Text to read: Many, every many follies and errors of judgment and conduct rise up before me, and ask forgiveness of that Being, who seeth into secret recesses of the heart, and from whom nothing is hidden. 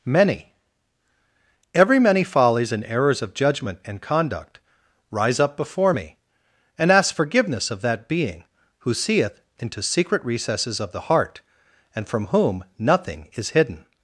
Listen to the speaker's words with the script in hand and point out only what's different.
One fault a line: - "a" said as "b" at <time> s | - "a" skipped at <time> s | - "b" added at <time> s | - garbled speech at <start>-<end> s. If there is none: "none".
none